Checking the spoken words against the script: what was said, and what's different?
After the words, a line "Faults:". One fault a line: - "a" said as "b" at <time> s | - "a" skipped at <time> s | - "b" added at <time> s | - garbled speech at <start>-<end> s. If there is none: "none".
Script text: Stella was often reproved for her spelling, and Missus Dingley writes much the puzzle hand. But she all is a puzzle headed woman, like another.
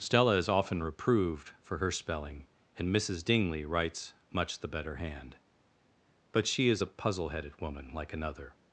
Stella is often reproved for her spelling, and Missus Dingley writes much the better hand. But she is a puzzle headed woman, like another.
Faults:
- "was" said as "is" at 0.3 s
- "puzzle" said as "better" at 4.7 s
- "all" skipped at 6.7 s